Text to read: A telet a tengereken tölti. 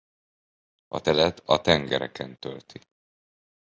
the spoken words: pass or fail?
pass